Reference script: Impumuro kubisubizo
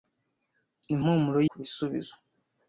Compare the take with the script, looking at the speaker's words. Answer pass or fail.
pass